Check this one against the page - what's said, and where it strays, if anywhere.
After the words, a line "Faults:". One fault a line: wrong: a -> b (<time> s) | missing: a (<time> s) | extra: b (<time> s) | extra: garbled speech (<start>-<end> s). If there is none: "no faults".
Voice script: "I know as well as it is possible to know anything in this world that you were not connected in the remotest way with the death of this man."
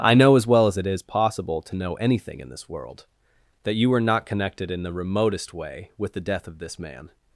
"I know as well as it is possible to know anything in this world that you were not connected in the remotest way with the death of this man."
Faults:
no faults